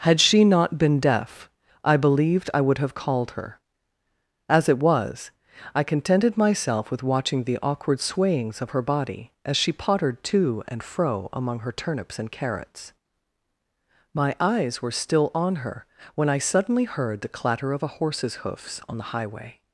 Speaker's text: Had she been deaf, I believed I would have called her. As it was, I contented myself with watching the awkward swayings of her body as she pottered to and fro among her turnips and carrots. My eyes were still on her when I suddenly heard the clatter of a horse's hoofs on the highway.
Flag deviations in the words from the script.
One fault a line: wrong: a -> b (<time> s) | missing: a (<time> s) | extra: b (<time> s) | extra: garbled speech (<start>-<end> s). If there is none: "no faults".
extra: not (0.4 s)